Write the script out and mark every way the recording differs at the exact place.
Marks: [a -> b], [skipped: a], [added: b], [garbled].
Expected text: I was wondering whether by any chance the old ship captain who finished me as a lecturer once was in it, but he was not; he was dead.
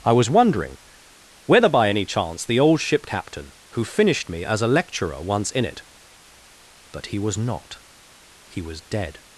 I was wondering whether by any chance the old ship captain who finished me as a lecturer once [skipped: was] in it, but he was not; he was dead.